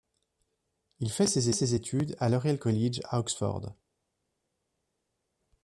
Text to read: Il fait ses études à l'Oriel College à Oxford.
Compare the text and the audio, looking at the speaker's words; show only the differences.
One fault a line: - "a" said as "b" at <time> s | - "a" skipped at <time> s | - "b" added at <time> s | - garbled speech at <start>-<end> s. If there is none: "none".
- "ses" added at 1.5 s